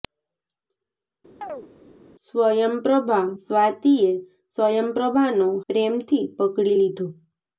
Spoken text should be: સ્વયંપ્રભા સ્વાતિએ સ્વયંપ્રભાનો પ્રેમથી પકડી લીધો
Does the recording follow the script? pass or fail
pass